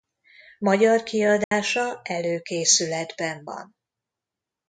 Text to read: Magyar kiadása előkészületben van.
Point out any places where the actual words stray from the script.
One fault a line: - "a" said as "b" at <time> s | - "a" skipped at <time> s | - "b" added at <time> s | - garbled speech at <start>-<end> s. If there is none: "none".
none